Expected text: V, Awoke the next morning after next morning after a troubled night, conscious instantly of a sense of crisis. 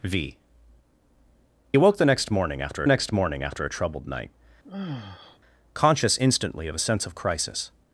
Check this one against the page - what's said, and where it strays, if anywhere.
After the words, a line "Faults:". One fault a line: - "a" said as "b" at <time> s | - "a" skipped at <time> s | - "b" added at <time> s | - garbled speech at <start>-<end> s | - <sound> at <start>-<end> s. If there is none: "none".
V, Awoke the next morning after next morning after a troubled night, conscious instantly of a sense of crisis.
Faults:
- sigh at 4.6-5.4 s